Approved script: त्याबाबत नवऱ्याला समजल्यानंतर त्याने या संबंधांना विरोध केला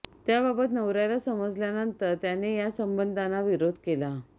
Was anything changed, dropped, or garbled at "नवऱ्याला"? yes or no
no